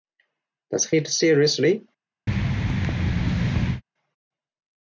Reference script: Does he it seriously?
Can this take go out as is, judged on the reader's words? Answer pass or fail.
pass